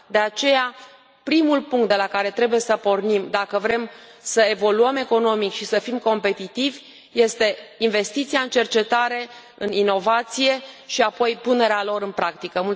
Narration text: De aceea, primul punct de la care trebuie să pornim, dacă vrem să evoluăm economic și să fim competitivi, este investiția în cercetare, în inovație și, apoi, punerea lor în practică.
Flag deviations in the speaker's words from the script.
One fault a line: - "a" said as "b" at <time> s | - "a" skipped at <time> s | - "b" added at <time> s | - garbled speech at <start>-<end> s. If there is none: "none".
none